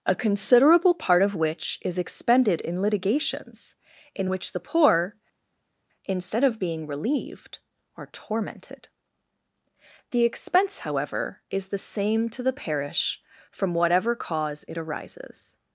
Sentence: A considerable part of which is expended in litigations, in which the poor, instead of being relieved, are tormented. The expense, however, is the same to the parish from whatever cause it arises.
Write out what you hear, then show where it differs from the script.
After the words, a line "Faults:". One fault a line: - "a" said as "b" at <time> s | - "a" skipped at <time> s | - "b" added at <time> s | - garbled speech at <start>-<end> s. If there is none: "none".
A considerable part of which is expended in litigations, in which the poor, instead of being relieved, are tormented. The expense, however, is the same to the parish from whatever cause it arises.
Faults:
none